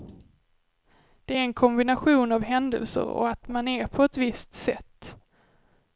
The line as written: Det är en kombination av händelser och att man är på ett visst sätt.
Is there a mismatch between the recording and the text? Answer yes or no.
no